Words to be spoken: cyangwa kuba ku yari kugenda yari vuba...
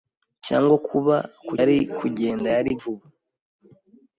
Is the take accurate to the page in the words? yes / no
yes